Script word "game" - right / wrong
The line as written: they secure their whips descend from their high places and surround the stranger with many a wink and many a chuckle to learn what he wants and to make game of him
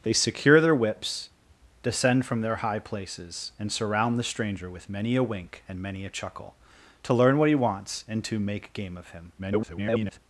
right